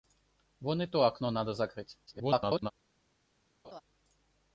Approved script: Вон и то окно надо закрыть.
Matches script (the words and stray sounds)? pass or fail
fail